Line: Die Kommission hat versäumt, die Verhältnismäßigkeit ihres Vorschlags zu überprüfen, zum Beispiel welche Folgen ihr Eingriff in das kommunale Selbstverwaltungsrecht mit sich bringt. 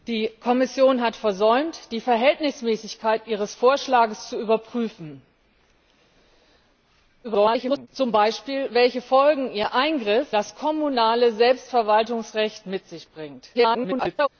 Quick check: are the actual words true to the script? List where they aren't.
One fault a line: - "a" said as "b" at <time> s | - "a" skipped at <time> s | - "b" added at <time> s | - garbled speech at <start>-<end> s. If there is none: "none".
- garbled speech at 7.2-7.9 s
- "in" skipped at 10.3 s
- garbled speech at 13.5-14.3 s